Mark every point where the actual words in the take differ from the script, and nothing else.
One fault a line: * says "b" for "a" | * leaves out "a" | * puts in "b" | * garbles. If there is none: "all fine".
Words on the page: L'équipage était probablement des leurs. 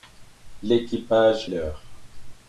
* leaves out "était probablement des"